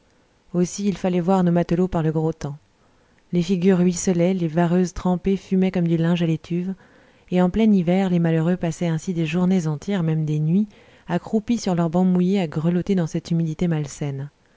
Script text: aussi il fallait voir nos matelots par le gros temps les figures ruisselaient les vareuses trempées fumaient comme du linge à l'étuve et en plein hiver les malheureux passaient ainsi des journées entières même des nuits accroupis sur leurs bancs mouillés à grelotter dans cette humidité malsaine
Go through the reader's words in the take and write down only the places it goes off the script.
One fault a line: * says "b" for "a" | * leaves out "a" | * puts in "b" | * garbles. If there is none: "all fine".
all fine